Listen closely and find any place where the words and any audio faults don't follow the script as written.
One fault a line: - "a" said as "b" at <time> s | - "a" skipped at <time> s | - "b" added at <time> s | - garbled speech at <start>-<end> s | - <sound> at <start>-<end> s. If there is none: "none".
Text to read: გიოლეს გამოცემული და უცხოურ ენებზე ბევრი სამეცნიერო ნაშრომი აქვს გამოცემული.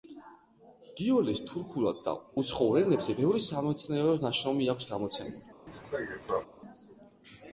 - "გამოცემული" said as "თურქულად" at 1.5 s
- cough at 5.7-6.5 s